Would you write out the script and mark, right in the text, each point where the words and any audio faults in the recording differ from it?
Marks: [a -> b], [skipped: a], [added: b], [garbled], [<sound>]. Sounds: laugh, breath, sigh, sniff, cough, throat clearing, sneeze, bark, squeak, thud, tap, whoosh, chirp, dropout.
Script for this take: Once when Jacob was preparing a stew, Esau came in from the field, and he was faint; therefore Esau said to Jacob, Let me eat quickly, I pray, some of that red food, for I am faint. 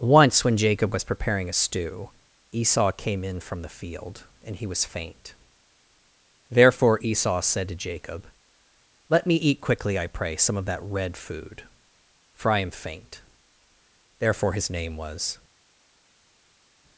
Once when Jacob was preparing a stew, Esau came in from the field, and he was faint; therefore Esau said to Jacob, Let me eat quickly, I pray, some of that red food, for I am faint. [added: Therefore his name was]